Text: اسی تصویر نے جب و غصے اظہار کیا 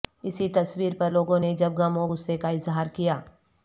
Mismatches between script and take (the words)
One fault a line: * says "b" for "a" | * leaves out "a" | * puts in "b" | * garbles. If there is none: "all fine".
* puts in "پر لوگوں"
* puts in "غم"
* puts in "کا"